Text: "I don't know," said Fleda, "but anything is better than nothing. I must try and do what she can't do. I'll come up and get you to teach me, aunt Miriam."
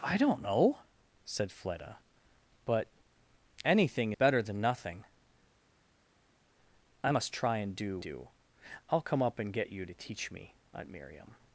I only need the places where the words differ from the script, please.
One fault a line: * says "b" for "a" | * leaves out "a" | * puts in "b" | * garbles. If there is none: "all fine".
* leaves out "is"
* leaves out "what she can't"